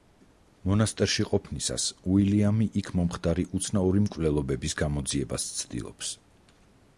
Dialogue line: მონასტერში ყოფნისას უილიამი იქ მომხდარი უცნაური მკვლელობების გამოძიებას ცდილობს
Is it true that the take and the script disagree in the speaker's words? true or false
false